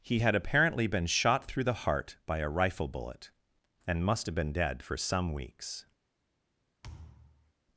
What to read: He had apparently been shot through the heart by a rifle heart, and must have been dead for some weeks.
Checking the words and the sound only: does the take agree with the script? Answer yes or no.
no